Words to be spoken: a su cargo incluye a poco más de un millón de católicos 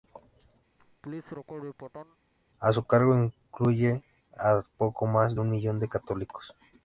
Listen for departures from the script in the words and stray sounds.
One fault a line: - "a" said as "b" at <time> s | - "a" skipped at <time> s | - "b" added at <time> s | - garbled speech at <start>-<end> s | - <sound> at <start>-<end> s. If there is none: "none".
- laugh at 0.8-2.2 s